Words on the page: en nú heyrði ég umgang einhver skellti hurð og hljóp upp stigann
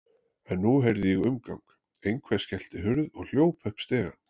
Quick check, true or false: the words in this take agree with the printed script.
true